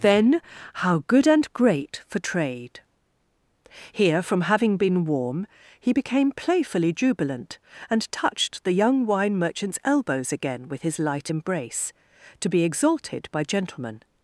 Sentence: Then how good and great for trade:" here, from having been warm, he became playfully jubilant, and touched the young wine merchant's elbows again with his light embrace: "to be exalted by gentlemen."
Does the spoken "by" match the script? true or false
true